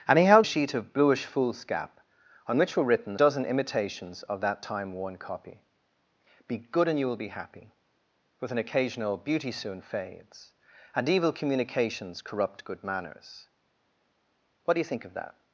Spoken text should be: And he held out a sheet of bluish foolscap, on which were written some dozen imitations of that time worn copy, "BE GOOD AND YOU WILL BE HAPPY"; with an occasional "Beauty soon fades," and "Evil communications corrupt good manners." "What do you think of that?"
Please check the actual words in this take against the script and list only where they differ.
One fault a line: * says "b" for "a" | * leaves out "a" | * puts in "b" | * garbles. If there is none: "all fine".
* leaves out "out"
* leaves out "some"